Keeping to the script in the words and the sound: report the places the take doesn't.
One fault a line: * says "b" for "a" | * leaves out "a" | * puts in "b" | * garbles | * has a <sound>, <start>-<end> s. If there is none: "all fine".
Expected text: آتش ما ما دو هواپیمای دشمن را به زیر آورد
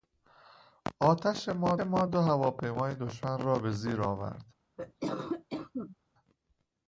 * has a cough, 4.8-6.0 s